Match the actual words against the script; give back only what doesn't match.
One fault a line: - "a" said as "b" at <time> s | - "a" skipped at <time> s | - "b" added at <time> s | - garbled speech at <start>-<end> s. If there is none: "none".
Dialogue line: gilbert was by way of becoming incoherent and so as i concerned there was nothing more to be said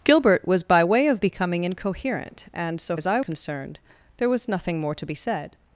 none